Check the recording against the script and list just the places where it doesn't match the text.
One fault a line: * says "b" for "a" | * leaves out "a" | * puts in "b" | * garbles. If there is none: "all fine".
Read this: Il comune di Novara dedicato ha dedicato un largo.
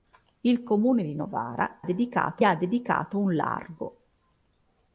all fine